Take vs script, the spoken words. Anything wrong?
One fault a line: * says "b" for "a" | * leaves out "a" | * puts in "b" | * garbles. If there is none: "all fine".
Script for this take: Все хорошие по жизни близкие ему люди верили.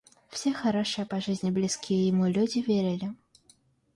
all fine